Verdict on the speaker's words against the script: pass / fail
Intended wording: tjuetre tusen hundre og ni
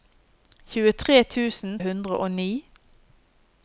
pass